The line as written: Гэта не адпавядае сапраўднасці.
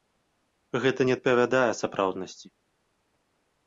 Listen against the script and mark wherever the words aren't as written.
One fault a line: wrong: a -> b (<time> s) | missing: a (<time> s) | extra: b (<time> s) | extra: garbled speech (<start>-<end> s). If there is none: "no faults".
no faults